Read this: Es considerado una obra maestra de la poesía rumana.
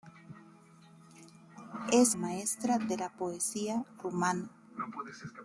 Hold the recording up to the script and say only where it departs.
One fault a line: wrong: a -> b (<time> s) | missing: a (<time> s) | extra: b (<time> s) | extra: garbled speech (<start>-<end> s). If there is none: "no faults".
missing: considerado una obra (2.1 s)